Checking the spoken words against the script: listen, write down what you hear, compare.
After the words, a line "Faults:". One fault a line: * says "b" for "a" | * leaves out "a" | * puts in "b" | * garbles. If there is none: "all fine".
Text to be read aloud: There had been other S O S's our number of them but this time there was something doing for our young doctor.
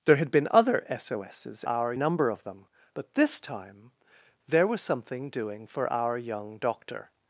There had been other S O S's our number of them but this time there was something doing for our young doctor.
Faults:
all fine